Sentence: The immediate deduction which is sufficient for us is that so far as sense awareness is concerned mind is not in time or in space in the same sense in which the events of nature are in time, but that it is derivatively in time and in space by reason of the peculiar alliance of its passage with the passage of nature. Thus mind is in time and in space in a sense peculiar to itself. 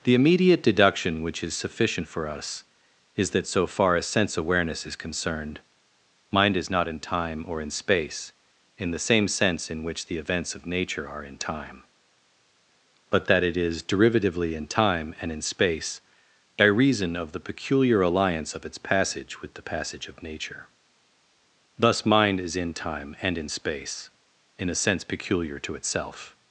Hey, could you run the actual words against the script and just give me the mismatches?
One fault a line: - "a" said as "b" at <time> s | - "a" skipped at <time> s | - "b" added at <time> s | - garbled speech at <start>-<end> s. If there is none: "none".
none